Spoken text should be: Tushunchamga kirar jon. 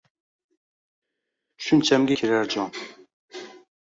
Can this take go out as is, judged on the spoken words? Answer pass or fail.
pass